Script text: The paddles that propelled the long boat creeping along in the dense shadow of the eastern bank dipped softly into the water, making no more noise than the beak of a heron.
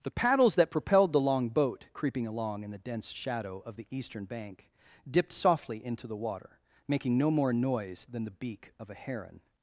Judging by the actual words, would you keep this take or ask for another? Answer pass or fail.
pass